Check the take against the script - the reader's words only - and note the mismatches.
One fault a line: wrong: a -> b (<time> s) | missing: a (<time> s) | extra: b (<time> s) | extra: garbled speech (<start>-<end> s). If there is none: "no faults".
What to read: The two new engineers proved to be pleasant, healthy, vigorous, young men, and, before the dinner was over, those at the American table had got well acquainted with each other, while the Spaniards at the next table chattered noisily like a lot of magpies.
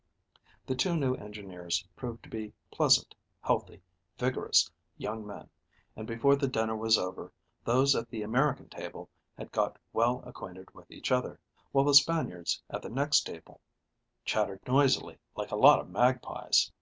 no faults